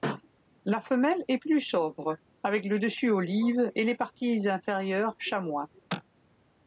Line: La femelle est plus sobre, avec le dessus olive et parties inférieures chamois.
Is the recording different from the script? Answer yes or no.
yes